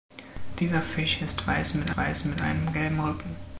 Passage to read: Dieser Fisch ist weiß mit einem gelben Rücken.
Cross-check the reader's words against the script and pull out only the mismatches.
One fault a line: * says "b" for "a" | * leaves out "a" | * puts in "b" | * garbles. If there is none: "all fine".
* puts in "weiß mit"